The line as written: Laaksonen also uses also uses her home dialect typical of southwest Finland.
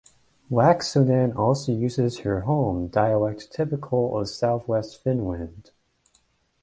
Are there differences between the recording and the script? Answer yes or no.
yes